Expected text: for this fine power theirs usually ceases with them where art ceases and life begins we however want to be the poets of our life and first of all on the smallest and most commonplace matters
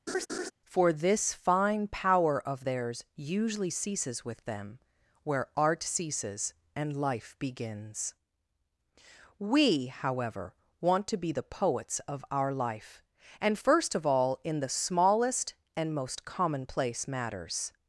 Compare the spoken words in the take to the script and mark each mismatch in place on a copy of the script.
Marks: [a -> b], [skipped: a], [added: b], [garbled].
for this fine power [added: of] theirs usually ceases with them where art ceases and life begins we however want to be the poets of our life and first of all [on -> in] the smallest and most commonplace matters